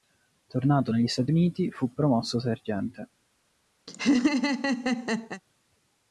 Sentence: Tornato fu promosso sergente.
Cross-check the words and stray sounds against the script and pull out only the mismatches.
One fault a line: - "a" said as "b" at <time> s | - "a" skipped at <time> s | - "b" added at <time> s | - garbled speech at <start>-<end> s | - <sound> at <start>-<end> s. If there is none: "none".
- "negli Stati Uniti" added at 0.9 s
- laugh at 3.9-5.4 s